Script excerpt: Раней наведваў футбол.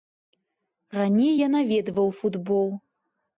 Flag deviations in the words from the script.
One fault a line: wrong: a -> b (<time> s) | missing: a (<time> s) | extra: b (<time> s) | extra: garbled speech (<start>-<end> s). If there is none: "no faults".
extra: я (1.4 s)